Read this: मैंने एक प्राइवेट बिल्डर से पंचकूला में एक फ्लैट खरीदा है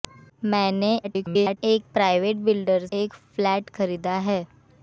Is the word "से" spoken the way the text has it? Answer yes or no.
no